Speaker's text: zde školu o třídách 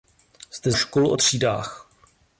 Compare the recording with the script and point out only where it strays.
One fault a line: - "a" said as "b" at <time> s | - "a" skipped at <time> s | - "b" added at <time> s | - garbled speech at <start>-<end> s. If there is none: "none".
none